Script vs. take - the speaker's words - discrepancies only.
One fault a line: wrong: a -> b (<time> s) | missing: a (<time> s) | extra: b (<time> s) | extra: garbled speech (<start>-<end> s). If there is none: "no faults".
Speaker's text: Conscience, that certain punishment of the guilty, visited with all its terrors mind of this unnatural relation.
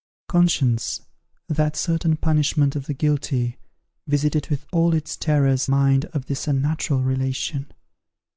no faults